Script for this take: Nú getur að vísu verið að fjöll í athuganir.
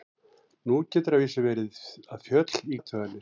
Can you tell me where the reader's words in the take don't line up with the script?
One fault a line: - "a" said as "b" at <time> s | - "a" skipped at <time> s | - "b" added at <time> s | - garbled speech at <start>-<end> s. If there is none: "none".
none